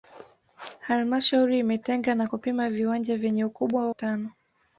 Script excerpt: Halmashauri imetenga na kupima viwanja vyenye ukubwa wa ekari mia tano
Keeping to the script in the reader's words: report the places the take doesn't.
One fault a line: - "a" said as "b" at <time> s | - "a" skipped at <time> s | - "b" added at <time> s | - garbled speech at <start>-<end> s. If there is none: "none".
- "wa ekari mia" skipped at 3.9 s